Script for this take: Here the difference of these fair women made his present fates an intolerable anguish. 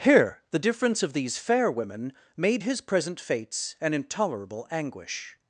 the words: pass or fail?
pass